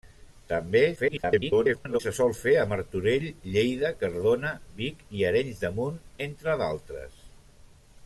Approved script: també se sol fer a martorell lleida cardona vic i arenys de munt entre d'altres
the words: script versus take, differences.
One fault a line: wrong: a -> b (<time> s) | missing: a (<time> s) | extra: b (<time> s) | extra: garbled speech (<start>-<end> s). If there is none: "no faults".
extra: garbled speech (1.0-2.0 s)